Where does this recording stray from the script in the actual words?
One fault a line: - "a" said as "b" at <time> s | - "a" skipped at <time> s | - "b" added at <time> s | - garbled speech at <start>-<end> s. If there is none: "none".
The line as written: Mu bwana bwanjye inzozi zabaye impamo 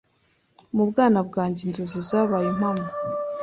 none